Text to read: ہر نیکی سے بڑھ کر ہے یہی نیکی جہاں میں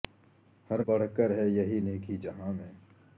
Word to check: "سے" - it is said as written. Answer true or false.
false